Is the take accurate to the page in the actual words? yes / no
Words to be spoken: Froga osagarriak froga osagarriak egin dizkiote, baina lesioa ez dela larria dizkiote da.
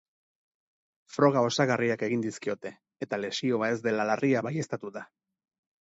no